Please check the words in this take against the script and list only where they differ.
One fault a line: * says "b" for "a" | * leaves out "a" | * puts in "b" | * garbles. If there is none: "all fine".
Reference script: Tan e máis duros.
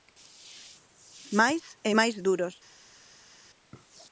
* says "Máis" for "Tan"